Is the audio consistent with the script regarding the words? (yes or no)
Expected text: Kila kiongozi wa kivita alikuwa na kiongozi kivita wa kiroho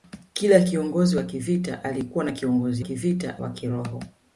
yes